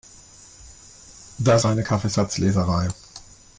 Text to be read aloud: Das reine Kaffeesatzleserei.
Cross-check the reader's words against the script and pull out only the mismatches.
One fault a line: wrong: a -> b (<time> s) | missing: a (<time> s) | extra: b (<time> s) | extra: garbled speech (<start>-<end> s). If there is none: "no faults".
no faults